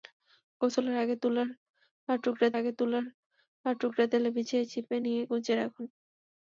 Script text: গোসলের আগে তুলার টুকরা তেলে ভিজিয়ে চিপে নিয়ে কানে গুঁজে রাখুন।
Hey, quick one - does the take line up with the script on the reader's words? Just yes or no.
no